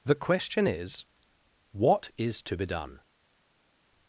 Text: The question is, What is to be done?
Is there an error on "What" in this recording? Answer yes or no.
no